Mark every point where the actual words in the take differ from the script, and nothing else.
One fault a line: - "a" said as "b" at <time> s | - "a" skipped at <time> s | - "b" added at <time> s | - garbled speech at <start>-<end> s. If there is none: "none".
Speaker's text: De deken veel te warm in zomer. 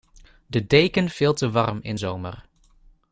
none